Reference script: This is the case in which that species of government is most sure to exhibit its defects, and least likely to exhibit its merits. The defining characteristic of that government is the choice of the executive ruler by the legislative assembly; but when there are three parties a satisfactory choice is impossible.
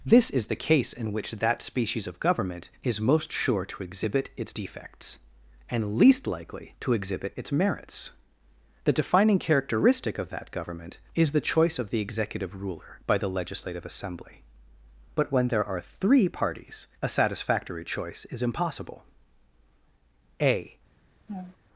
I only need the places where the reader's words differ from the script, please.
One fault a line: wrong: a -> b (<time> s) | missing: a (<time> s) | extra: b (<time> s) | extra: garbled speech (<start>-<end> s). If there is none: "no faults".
extra: A (20.4 s)